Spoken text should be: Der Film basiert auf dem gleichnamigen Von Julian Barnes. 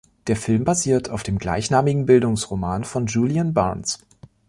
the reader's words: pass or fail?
fail